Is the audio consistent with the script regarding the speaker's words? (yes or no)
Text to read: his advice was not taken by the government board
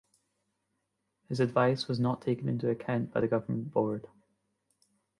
no